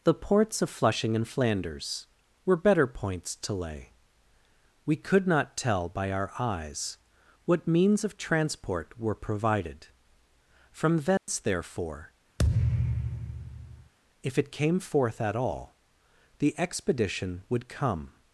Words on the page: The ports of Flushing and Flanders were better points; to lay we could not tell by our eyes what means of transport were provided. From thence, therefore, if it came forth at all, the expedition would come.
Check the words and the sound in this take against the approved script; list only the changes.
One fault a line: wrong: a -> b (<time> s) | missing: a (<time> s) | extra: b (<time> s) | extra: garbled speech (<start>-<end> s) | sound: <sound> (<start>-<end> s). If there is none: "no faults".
sound: dropout (11.2-11.3 s)
sound: thud (12.4-13.9 s)